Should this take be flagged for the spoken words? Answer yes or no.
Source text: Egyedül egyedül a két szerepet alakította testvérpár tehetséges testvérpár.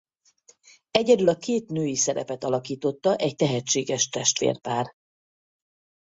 yes